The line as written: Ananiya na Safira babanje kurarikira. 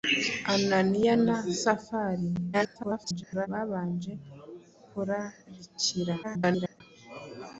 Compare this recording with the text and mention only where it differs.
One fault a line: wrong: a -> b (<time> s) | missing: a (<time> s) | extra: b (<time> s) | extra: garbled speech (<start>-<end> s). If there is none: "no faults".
extra: garbled speech (2.5-3.5 s)
extra: garbled speech (6.2-6.8 s)